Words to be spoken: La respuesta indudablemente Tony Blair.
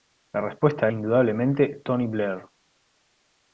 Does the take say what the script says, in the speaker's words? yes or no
yes